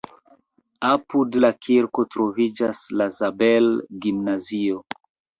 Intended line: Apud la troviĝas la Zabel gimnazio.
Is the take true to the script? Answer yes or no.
no